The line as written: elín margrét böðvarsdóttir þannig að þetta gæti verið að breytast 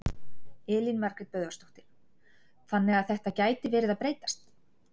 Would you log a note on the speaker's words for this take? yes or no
no